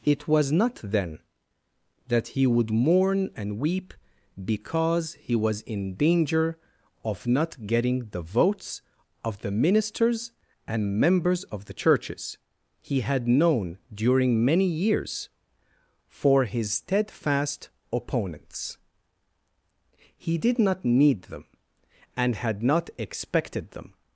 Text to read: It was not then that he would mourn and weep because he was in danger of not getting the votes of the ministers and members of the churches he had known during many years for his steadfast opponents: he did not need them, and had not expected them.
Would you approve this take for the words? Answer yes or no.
yes